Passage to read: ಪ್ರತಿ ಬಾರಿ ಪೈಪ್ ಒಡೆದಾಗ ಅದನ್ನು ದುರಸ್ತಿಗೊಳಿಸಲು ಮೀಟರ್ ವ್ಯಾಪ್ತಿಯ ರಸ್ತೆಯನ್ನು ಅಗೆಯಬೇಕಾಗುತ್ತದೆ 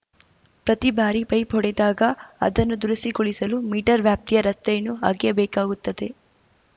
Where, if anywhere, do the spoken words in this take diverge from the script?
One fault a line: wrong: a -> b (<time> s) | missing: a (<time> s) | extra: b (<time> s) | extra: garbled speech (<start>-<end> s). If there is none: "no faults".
no faults